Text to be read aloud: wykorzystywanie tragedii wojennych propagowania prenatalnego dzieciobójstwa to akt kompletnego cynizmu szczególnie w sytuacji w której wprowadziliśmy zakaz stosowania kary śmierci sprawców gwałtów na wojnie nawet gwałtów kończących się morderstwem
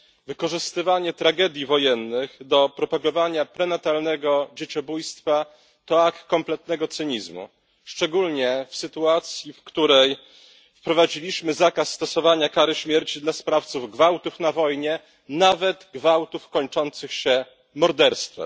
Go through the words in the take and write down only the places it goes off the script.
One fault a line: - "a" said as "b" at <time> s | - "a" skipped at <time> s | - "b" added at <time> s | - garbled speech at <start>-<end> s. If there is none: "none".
- "do" added at 2.4 s
- "dla" added at 13.2 s